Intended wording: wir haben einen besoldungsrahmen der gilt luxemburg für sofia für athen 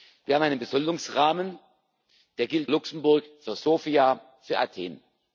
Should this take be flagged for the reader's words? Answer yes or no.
no